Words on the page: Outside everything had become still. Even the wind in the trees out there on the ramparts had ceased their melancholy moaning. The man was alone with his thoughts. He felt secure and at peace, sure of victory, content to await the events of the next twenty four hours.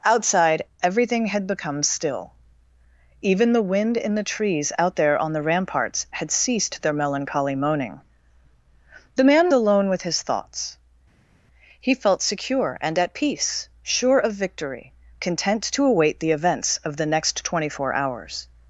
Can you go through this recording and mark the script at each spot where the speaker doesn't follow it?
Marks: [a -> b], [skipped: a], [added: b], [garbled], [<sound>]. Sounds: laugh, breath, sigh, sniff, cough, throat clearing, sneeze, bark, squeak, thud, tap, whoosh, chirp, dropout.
Outside everything had become still. Even the wind in the trees out there on the ramparts had ceased their melancholy moaning. The man [skipped: was] alone with his thoughts. He felt secure and at peace, sure of victory, content to await the events of the next twenty four hours.